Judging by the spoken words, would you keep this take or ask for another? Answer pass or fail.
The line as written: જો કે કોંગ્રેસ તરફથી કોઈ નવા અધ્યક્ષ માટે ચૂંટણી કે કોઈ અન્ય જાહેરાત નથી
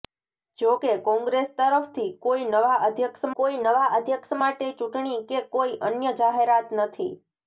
fail